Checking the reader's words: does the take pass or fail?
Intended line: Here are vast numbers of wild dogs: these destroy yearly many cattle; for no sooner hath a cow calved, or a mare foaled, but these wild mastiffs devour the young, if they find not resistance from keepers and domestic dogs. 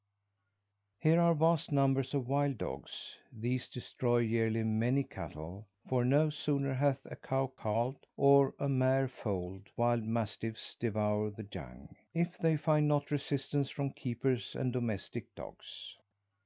fail